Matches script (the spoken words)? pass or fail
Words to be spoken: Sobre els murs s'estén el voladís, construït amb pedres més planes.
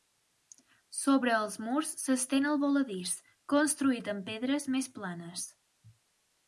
pass